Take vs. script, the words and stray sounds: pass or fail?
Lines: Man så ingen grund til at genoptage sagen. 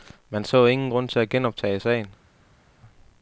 pass